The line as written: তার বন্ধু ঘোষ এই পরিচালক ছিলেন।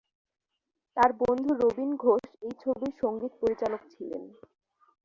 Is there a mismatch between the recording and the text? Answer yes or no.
yes